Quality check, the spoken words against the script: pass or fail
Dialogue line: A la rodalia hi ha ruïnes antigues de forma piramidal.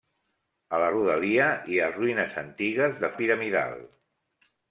fail